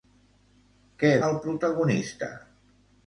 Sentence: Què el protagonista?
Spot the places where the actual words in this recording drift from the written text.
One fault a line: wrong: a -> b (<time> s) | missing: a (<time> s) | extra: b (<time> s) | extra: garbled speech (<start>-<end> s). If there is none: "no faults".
no faults